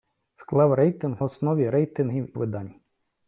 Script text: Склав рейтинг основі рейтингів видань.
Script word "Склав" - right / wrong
right